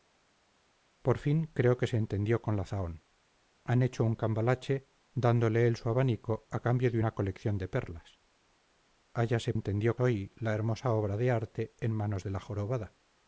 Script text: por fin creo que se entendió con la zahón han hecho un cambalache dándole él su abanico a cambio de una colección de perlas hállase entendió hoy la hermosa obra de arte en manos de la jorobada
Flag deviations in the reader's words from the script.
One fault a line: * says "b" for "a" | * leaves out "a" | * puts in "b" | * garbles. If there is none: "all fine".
all fine